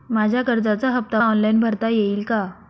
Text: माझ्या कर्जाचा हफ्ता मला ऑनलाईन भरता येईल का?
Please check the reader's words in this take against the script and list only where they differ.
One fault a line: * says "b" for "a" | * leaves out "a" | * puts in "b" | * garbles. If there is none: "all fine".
* leaves out "मला"